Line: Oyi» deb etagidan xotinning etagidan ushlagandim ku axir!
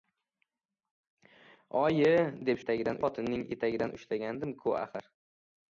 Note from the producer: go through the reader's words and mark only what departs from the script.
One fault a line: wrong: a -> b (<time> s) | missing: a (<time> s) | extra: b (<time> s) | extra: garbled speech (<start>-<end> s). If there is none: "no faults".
no faults